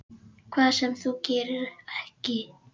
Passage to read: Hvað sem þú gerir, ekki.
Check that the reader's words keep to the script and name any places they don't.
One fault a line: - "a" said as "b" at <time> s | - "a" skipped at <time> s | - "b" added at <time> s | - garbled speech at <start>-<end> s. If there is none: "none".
none